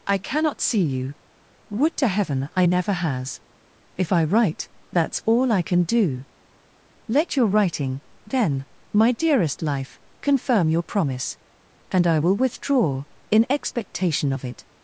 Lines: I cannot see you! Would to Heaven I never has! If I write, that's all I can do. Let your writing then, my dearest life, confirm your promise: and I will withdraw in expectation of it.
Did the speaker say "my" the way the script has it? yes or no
yes